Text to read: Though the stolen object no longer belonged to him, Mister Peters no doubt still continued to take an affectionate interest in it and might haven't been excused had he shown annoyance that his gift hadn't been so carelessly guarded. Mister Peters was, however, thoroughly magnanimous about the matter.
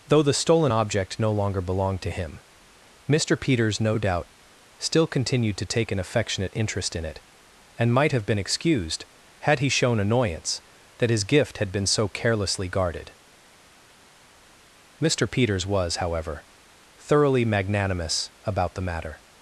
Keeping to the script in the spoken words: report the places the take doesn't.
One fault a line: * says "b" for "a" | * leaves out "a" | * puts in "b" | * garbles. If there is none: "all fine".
* says "have" for "haven't"
* says "had" for "hadn't"